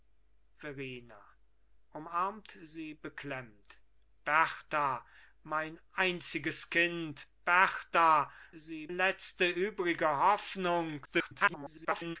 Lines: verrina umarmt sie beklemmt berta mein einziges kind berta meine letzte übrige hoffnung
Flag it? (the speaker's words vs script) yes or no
yes